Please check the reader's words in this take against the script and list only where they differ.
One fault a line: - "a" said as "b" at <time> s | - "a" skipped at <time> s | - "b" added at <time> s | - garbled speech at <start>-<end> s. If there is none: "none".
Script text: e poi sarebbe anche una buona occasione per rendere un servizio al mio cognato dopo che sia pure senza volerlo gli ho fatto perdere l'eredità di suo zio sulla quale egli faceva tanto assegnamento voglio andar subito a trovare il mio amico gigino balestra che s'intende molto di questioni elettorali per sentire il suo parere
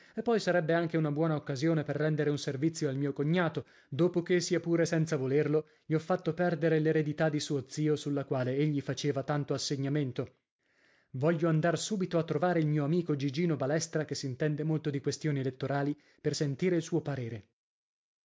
none